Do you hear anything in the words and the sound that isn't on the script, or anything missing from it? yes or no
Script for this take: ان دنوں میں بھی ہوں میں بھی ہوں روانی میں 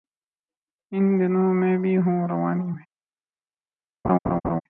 yes